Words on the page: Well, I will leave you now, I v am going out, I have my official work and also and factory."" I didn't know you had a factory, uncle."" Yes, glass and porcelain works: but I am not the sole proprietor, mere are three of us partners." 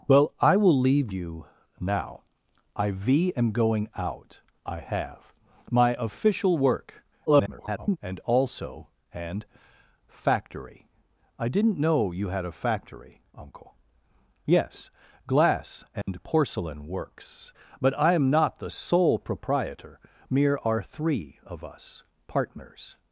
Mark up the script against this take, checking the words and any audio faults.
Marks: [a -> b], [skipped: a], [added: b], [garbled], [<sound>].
Well, I will leave you now, I v am going out, I have my official work [garbled] and also and factory."" I didn't know you had a factory, uncle."" Yes, glass and [dropout] porcelain works: but I am not the sole proprietor, mere are three of us partners."